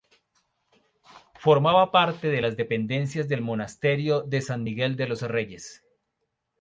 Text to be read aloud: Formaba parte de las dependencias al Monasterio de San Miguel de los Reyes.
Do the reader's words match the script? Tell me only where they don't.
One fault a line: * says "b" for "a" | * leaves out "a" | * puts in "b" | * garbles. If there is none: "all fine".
* says "del" for "al"